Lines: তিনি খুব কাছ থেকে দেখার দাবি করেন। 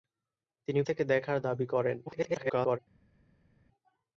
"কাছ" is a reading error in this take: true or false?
true